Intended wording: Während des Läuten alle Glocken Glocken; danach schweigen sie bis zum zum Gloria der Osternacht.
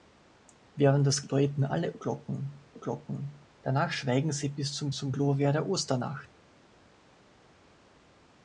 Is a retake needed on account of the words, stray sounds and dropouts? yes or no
no